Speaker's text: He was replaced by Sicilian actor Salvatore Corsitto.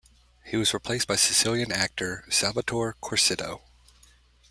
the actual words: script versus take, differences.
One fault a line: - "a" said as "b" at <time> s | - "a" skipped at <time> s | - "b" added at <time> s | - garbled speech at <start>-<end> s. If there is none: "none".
none